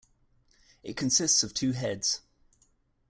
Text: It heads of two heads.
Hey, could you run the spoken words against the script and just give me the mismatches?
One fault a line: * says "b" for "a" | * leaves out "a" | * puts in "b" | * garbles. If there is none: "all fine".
* says "consists" for "heads"